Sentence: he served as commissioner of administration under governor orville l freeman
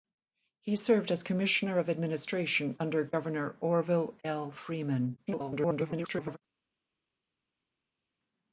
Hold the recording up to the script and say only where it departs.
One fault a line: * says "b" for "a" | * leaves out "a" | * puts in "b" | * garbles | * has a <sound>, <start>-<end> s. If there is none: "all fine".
* garbles